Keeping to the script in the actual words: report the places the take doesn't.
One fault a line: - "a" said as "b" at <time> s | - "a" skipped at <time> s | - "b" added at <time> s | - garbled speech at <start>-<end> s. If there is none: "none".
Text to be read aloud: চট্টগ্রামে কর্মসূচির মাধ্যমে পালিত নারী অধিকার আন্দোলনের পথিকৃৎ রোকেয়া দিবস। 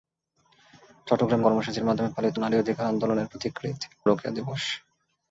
none